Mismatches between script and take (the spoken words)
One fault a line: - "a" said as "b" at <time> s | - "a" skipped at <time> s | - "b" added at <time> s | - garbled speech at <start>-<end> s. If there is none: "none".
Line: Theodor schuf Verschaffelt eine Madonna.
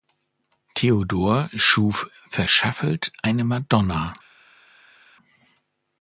none